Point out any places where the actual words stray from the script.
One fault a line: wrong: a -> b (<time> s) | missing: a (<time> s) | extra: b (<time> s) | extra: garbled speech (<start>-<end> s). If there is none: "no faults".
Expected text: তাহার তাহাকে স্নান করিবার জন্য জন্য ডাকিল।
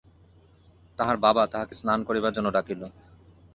extra: বাবা (1.2 s)
missing: জন্য (2.5 s)